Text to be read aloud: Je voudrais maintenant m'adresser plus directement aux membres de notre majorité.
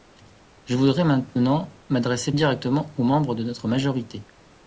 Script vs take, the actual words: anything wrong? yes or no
yes